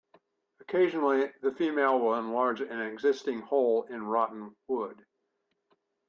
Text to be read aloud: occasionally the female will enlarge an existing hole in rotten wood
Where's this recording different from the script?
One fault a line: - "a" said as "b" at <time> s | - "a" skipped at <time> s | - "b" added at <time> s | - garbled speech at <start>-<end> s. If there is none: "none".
none